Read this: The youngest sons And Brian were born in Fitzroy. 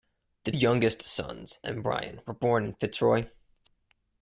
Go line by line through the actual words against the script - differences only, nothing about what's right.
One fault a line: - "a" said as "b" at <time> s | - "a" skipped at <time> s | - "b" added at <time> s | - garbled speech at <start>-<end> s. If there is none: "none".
none